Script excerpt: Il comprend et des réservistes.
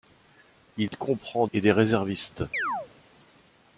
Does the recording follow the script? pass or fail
pass